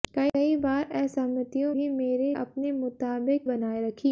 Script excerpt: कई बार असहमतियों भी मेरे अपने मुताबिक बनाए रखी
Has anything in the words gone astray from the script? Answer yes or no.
no